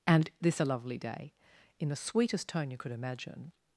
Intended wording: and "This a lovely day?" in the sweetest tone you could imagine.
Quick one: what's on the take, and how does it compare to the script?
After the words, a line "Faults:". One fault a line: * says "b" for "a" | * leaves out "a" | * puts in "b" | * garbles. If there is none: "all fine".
and "This a lovely day?" in the sweetest tone you could imagine.
Faults:
all fine